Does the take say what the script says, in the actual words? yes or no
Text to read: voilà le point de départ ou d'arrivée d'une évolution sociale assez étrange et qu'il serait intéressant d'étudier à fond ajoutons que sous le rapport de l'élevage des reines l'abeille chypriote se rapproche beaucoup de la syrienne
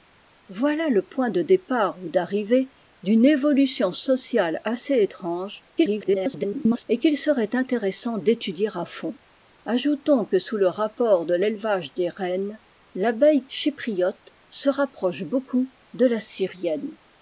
no